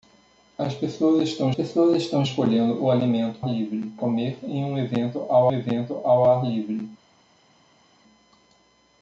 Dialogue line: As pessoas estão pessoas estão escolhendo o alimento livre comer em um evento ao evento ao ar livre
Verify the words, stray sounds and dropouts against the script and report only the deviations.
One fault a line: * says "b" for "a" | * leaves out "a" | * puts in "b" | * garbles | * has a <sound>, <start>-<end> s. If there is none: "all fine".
all fine